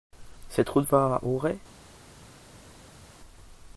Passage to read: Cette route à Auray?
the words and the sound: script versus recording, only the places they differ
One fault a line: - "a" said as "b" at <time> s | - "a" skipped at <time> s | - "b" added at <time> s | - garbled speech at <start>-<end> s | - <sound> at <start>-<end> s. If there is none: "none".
- "va" added at 0.9 s